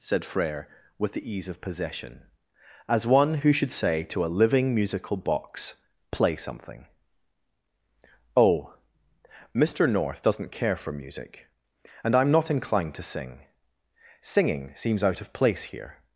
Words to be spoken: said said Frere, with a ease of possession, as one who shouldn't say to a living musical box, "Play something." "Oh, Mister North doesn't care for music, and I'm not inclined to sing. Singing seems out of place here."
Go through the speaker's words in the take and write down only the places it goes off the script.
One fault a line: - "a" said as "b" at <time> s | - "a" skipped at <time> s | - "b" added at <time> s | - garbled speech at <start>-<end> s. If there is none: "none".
- "said" skipped at 0.2 s
- "a" said as "the" at 1.1 s
- "shouldn't" said as "should" at 3.5 s